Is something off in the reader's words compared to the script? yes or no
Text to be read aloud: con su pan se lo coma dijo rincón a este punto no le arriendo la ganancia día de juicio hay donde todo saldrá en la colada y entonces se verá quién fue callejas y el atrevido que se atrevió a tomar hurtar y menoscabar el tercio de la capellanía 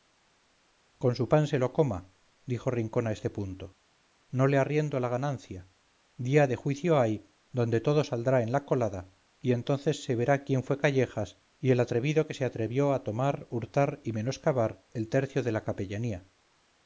no